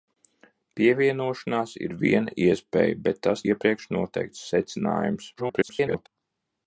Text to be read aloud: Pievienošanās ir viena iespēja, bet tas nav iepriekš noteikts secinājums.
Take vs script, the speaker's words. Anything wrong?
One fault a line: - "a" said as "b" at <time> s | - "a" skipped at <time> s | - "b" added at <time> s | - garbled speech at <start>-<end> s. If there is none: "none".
- "nav" skipped at 3.5 s
- garbled speech at 5.4-6.1 s